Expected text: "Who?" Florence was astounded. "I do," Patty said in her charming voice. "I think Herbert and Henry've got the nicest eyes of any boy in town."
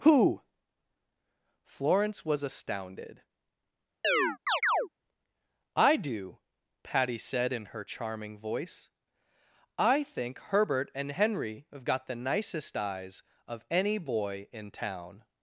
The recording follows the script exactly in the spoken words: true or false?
true